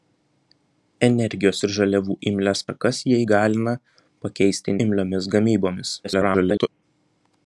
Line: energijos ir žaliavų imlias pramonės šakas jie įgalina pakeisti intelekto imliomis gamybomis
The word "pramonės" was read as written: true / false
false